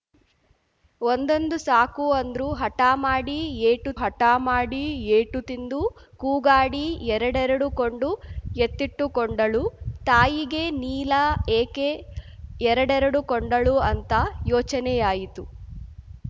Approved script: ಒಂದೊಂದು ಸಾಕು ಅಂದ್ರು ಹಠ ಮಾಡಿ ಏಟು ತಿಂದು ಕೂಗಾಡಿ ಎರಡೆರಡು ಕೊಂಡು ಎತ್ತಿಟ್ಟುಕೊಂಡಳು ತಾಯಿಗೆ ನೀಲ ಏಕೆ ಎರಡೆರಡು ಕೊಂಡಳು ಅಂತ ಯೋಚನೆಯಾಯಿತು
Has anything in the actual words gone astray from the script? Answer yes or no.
yes